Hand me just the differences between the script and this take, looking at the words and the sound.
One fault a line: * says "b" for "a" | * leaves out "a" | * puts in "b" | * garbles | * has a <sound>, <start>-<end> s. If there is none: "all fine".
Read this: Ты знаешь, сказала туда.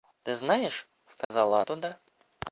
* has a dropout, 1.2-1.3 s